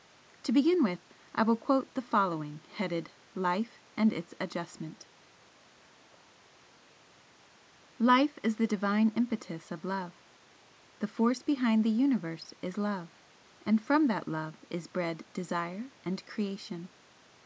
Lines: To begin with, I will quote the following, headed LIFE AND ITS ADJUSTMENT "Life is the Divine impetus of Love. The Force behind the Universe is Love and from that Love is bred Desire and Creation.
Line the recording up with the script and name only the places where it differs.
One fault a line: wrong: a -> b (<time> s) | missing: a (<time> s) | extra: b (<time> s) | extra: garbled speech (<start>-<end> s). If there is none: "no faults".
no faults